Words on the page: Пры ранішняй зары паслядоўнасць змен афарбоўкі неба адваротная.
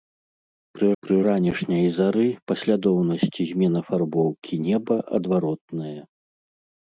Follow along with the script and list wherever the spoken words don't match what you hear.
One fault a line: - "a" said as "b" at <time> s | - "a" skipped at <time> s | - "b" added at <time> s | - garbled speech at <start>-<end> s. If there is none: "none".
- "пры" added at 1.0 s